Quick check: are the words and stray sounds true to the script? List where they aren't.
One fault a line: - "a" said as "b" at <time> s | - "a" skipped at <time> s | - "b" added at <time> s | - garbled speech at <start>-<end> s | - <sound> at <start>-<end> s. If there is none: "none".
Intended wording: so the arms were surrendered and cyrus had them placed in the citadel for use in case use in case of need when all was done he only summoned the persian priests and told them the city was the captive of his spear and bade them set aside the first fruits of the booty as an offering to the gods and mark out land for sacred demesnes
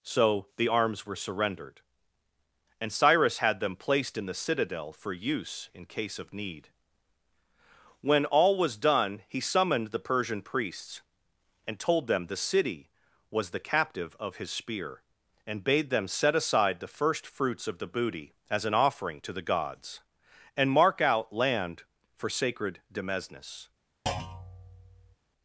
- "use in case" skipped at 6.2 s
- "only" skipped at 9.4 s
- thud at 24.1-25.2 s